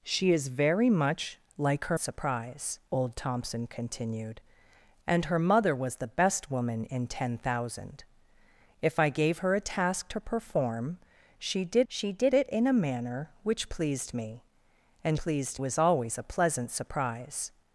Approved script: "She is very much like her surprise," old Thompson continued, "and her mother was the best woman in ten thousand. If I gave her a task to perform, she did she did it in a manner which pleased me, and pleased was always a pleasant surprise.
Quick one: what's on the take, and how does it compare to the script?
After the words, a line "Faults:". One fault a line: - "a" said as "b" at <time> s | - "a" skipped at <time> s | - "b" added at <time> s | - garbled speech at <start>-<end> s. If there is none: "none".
"She is very much like her surprise," old Thompson continued, "and her mother was the best woman in ten thousand. If I gave her a task to perform, she did she did it in a manner which pleased me, and pleased was always a pleasant surprise.
Faults:
none